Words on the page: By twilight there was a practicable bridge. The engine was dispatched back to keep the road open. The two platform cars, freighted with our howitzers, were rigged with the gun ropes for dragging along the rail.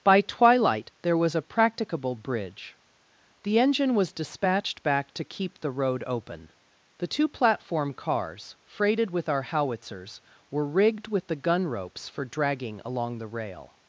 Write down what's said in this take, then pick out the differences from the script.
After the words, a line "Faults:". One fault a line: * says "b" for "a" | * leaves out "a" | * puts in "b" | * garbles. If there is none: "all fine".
By twilight there was a practicable bridge. The engine was dispatched back to keep the road open. The two platform cars, freighted with our howitzers, were rigged with the gun ropes for dragging along the rail.
Faults:
all fine